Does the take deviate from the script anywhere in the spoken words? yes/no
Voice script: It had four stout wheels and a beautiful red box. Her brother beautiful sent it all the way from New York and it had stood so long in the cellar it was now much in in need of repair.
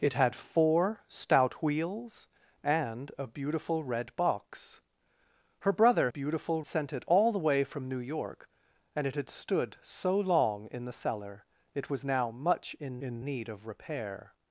no